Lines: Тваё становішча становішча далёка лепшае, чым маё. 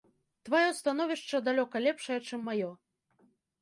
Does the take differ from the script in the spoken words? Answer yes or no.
yes